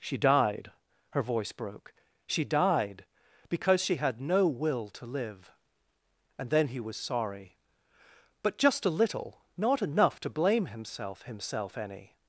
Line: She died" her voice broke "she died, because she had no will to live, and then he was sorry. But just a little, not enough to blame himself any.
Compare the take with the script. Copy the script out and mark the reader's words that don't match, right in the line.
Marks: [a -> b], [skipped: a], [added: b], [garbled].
She died" her voice broke "she died, because she had no will to live, and then he was sorry. But just a little, not enough to blame himself [added: himself] any.